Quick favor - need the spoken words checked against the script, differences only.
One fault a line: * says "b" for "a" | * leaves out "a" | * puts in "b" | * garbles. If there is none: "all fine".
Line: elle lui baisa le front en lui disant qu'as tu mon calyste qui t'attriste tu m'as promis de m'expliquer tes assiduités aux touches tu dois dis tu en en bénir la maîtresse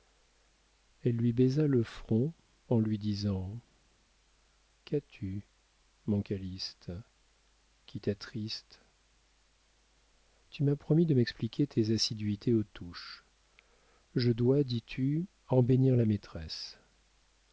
* says "je" for "tu"
* leaves out "en"